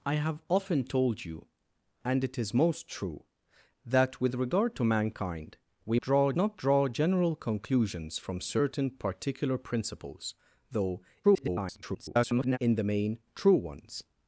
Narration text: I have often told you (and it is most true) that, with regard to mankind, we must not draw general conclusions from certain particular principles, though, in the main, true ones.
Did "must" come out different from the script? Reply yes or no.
yes